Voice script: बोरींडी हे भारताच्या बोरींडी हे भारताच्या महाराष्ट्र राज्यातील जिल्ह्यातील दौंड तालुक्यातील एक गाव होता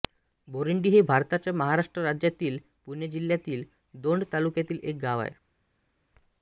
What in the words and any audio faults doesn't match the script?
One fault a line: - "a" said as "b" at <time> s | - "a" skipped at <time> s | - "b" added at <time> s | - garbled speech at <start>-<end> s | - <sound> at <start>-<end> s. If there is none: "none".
- "बोरींडी हे भारताच्या" skipped at 1.5 s
- "पुणे" added at 2.9 s
- "होता" said as "आहे" at 5.2 s